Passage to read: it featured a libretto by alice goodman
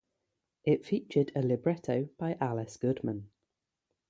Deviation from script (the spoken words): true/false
false